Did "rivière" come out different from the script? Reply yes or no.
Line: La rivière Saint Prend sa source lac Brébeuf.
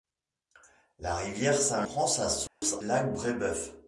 no